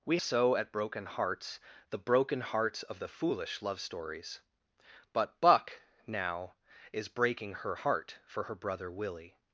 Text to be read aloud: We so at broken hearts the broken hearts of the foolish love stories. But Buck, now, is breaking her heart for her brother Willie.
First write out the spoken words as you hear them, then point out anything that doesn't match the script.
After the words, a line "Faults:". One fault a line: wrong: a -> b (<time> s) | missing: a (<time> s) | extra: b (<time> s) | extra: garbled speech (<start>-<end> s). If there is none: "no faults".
We so at broken hearts the broken hearts of the foolish love stories. But Buck, now, is breaking her heart for her brother Willie.
Faults:
no faults